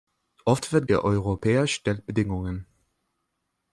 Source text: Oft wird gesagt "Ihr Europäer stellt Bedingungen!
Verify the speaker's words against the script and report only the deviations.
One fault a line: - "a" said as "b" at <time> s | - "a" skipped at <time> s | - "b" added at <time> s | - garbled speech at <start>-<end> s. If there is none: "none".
- "gesagt" skipped at 0.9 s